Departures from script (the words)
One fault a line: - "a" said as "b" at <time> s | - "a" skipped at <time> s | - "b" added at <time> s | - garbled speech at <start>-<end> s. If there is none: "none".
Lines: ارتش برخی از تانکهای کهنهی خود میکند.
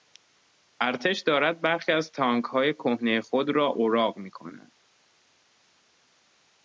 - "دارد" added at 1.2 s
- "را اوراق" added at 3.5 s